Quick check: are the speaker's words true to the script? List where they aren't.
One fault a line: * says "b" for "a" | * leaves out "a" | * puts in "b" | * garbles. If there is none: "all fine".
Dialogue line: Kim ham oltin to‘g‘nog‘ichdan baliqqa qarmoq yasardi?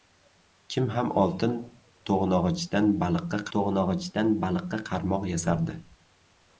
* puts in "to‘g‘nog‘ichdan baliqqa"